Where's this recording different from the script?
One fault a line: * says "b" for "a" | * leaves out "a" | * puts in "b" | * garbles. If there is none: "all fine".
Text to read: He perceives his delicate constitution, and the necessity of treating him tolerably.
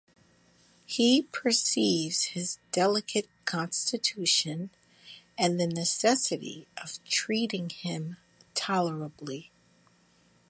all fine